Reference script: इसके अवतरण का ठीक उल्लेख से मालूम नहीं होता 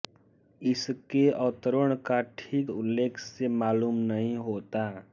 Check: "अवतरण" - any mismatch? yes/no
no